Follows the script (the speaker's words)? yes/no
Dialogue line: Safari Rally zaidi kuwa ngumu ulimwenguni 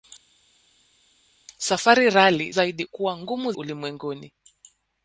yes